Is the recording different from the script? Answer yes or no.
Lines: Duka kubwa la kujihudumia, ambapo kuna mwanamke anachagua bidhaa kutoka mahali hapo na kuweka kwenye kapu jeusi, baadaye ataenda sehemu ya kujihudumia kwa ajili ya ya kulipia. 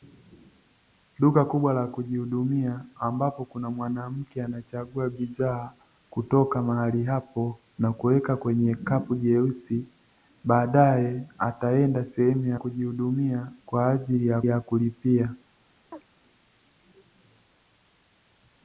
no